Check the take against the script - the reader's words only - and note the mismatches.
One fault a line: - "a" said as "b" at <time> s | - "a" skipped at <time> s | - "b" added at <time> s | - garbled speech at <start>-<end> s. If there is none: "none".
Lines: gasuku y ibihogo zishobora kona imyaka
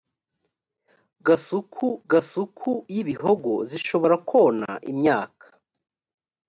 - "gasuku" added at 2.1 s